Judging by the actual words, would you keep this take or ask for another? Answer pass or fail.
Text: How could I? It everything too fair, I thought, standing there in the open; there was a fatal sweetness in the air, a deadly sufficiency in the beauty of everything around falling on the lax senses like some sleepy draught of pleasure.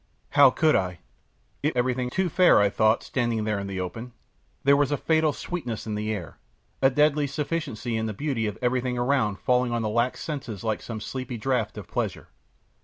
pass